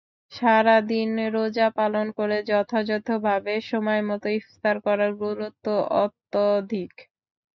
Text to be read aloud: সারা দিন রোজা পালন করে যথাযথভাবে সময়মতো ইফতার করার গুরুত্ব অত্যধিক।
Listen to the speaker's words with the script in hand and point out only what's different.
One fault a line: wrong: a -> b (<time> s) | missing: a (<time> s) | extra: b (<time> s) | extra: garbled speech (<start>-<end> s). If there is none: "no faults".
no faults